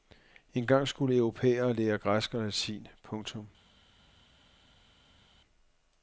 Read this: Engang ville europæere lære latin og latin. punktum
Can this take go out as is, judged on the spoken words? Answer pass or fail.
fail